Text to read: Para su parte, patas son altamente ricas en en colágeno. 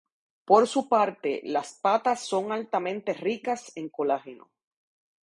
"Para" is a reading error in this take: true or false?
true